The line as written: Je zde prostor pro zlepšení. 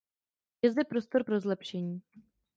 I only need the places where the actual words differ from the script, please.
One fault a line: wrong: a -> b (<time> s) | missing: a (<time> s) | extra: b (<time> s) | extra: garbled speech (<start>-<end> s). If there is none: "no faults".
no faults